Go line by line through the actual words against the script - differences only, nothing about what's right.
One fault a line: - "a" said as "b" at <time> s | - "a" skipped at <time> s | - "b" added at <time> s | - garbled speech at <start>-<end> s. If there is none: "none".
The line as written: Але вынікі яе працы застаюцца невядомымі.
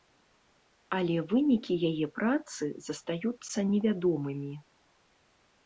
none